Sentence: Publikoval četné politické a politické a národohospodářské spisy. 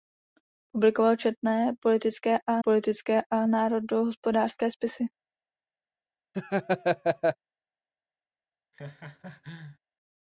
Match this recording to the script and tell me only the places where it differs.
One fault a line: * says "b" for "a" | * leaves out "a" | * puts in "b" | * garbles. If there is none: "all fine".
all fine